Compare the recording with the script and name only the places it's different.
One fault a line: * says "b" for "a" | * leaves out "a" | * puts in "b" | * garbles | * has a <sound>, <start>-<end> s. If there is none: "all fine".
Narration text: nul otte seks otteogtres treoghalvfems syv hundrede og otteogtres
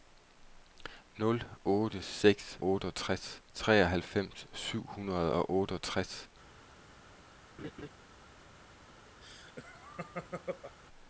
* has a laugh, 7.6-7.9 s
* has a laugh, 9.2-10.8 s